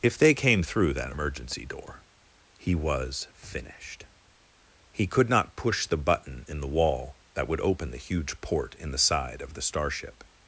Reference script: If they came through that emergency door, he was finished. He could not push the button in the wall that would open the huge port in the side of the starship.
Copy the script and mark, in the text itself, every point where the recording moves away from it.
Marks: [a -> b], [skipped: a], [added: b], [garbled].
If they came through that emergency door, he was finished. He could not push the button in the wall that would open the huge port in the side of the starship.